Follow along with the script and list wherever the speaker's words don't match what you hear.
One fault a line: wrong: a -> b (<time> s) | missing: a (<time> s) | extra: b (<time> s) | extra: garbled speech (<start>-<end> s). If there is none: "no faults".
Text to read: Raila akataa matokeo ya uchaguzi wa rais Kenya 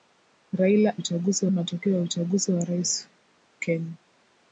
wrong: akataa -> uchaguzi (0.9 s)